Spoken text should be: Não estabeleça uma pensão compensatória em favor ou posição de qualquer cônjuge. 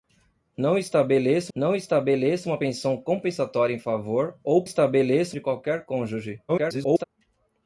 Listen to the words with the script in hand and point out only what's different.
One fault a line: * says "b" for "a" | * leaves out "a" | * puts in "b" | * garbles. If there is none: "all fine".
* puts in "não estabeleça"
* says "estabeleça" for "posição"
* garbles